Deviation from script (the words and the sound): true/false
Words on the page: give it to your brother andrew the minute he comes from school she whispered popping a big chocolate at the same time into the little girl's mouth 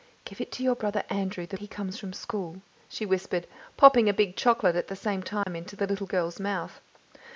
true